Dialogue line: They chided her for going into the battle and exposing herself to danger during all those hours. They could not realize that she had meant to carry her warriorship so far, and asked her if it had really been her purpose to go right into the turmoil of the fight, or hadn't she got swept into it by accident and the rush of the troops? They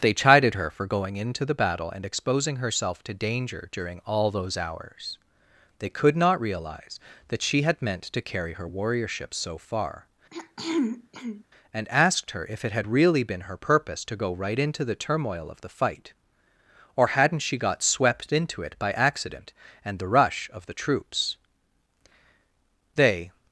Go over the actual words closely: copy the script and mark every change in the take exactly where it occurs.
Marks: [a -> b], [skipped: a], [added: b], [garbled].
They chided her for going into the battle and exposing herself to danger during all those hours. They could not realize that she had meant to carry her warriorship so far, and asked her if it had really been her purpose to go right into the turmoil of the fight, or hadn't she got swept into it by accident and the rush of the troops? They